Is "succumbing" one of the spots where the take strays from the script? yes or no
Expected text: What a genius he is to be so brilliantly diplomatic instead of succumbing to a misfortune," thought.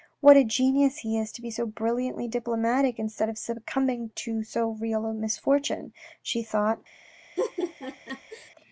no